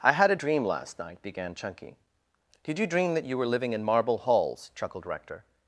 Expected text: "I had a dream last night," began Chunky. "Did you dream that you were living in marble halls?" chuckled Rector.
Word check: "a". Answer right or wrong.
right